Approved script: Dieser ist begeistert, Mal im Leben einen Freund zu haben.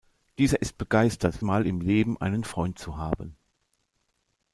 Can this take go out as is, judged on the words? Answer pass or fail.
pass